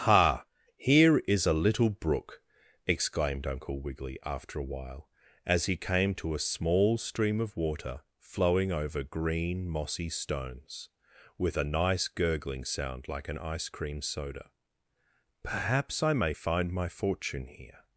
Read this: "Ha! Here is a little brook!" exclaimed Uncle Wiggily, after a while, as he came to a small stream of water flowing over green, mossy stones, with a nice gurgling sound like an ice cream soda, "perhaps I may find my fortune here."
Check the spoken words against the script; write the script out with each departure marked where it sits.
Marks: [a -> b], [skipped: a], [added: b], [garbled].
"Ha! Here is a little brook!" exclaimed Uncle Wiggily, after a while, as he came to a small stream of water flowing over green, mossy stones, with a nice gurgling sound like an ice cream soda, "perhaps I may find my fortune here."